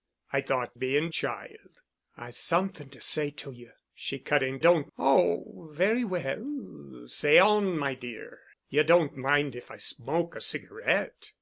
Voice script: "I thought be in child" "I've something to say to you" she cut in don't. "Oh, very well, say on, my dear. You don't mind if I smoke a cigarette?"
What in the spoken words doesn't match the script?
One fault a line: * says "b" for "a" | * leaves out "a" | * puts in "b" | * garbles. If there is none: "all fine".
all fine